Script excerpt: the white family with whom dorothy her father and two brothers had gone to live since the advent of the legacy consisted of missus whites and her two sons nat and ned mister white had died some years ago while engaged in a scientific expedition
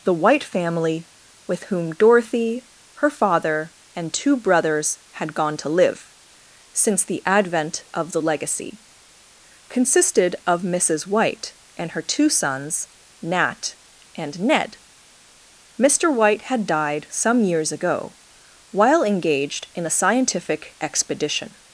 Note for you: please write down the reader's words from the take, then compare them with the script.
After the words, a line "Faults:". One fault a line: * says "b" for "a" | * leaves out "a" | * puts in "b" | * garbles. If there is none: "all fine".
the white family with whom dorothy her father and two brothers had gone to live since the advent of the legacy consisted of missus white and her two sons nat and ned mister white had died some years ago while engaged in a scientific expedition
Faults:
* says "white" for "whites"